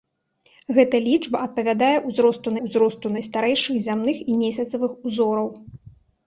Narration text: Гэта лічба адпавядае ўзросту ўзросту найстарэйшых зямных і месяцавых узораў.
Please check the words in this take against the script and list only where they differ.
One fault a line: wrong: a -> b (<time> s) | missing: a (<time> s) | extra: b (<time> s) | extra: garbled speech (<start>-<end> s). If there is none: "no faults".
no faults